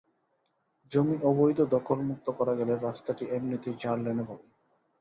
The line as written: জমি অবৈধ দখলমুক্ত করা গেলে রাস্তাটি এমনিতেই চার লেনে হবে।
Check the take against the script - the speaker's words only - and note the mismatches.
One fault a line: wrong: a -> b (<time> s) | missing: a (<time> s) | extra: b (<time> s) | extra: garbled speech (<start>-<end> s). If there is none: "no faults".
no faults